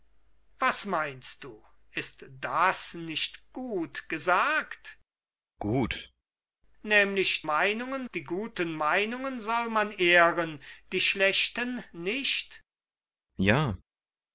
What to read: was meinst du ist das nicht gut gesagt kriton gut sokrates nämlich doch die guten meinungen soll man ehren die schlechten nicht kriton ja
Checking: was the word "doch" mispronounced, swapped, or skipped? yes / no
yes